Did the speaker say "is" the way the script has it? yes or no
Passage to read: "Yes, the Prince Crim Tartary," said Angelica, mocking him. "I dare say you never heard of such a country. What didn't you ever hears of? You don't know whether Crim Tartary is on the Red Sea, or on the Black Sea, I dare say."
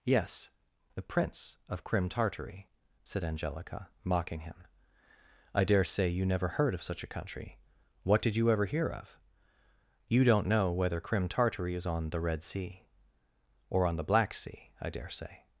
yes